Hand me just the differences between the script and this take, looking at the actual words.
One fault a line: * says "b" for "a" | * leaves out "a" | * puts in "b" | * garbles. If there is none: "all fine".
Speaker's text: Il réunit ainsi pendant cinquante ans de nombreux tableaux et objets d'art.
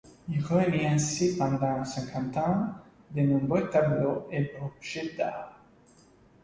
all fine